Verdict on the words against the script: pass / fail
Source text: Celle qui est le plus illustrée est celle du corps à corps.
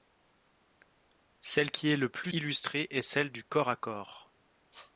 pass